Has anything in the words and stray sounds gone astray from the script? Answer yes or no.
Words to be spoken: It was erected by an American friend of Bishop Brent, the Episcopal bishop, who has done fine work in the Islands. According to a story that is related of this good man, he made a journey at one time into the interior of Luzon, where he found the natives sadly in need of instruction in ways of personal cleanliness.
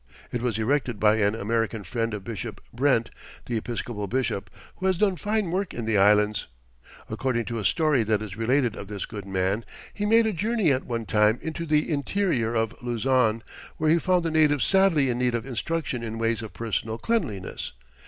no